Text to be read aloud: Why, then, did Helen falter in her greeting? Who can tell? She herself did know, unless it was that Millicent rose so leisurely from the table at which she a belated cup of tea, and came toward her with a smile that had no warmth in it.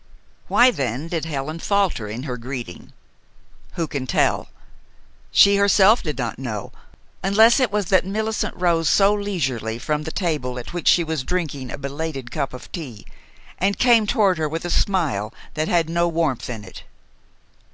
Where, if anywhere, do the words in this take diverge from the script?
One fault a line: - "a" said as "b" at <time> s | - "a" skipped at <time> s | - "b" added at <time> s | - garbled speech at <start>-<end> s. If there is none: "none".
- "not" added at 6.2 s
- "was drinking" added at 11.0 s